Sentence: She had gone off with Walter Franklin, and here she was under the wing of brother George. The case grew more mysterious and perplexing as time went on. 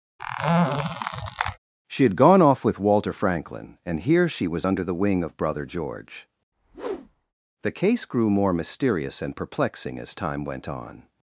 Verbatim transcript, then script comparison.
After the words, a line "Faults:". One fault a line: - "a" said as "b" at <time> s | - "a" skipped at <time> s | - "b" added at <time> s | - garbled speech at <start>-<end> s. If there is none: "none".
She had gone off with Walter Franklin, and here she was under the wing of brother George. The case grew more mysterious and perplexing as time went on.
Faults:
none